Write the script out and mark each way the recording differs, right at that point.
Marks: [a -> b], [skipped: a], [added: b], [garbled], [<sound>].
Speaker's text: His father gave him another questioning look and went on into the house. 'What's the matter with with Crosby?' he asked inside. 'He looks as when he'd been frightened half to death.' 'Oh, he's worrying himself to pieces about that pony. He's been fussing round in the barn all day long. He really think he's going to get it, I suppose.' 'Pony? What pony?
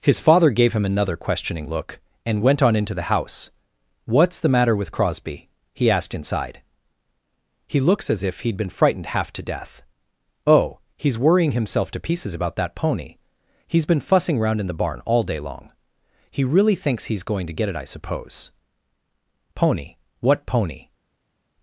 His father gave him another questioning look and went on into the house. 'What's the matter with [skipped: with] Crosby?' he asked inside. 'He looks as [when -> if] he'd been frightened half to death.' 'Oh, he's worrying himself to pieces about that pony. He's been fussing round in the barn all day long. He really [think -> thinks] he's going to get it, I suppose.' 'Pony? What pony?